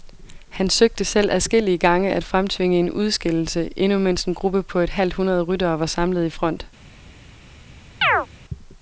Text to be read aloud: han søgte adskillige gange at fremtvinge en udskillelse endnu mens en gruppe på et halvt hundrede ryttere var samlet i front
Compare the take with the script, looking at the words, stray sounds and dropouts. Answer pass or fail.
fail